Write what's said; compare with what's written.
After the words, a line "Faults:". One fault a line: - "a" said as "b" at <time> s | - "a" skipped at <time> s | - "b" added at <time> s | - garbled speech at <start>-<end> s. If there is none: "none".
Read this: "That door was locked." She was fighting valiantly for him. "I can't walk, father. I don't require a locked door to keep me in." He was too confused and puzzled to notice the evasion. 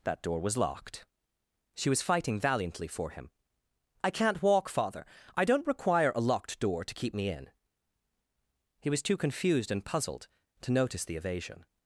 "That door was locked." She was fighting valiantly for him. "I can't walk, father. I don't require a locked door to keep me in." He was too confused and puzzled to notice the evasion.
Faults:
none